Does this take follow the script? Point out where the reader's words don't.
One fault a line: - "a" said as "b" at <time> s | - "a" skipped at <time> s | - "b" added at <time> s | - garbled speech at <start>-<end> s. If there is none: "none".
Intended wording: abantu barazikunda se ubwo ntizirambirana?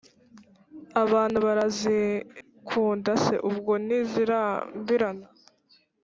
none